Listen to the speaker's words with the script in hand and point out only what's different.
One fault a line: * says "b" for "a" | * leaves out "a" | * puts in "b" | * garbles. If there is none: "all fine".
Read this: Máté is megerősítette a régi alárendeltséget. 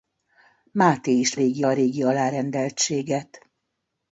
* says "régi" for "megerősítette"